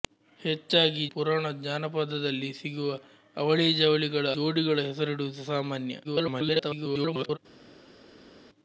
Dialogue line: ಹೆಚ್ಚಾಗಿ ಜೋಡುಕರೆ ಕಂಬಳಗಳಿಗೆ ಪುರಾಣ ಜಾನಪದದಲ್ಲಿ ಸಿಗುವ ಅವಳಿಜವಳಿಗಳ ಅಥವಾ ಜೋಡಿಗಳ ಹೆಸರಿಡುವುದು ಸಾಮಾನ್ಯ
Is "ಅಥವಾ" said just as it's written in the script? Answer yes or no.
no